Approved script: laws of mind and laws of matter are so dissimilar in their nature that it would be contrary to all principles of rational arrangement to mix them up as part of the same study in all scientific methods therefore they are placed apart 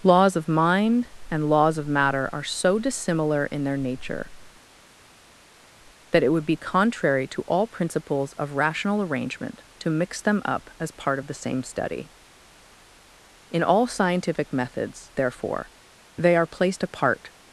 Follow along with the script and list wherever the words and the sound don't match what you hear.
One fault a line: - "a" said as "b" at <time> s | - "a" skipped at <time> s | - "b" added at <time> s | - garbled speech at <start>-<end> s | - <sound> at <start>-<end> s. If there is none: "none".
none